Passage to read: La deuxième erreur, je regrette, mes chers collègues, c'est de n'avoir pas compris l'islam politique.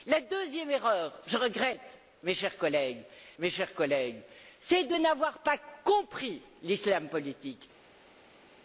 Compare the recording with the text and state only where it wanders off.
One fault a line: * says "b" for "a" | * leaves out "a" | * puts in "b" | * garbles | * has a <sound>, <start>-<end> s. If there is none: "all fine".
* puts in "mes chers collègues"